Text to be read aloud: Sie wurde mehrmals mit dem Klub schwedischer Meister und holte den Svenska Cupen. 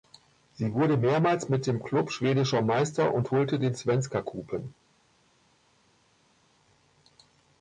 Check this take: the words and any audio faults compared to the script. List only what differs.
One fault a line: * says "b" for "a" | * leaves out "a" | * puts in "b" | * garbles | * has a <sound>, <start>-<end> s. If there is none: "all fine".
all fine